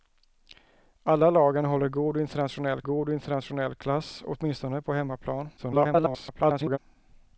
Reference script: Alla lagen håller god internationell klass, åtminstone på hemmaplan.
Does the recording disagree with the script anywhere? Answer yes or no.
yes